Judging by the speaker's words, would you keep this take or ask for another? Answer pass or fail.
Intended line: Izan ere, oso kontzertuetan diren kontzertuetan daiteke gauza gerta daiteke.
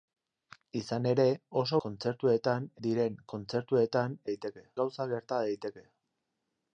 pass